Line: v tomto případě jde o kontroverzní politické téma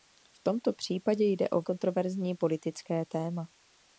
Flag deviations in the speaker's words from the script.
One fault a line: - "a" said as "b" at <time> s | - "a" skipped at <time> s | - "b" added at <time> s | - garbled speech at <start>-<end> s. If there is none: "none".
none